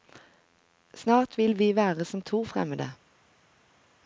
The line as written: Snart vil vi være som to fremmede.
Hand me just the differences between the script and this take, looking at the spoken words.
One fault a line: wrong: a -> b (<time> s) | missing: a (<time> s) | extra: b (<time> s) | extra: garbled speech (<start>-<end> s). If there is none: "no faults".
no faults